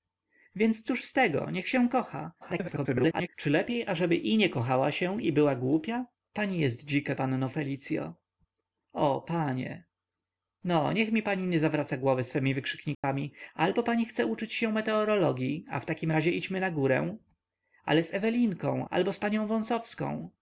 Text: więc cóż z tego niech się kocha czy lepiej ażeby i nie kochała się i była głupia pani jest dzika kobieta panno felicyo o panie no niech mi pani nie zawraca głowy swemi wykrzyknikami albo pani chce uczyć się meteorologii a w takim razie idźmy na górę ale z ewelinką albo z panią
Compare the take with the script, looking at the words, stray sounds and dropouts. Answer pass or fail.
fail